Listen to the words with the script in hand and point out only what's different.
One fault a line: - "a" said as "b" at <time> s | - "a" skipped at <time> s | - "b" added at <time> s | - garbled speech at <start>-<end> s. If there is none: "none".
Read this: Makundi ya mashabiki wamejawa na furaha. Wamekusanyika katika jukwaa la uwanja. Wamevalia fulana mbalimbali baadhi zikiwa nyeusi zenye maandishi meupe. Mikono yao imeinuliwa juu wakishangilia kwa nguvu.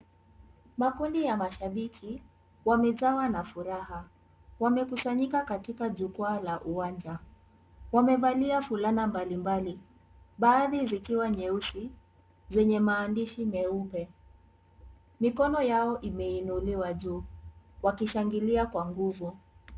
none